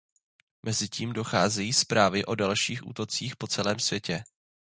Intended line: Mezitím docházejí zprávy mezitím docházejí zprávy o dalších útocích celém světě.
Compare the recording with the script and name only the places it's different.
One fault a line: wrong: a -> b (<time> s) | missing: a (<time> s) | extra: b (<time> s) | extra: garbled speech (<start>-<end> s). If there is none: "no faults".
missing: mezitím docházejí zprávy (2.2 s)
extra: po (3.4 s)